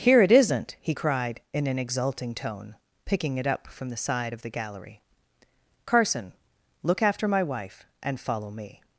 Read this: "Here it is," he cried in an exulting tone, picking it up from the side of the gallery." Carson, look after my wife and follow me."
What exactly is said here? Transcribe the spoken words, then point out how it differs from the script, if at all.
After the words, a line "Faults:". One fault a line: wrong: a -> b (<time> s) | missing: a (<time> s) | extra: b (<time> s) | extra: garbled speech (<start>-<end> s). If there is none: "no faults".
"Here it isn't," he cried in an exulting tone, picking it up from the side of the gallery." Carson, look after my wife and follow me."
Faults:
wrong: is -> isn't (0.3 s)